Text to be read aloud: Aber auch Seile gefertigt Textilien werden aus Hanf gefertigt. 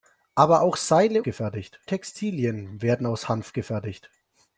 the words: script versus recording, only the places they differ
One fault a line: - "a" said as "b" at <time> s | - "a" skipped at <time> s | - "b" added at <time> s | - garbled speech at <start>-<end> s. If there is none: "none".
none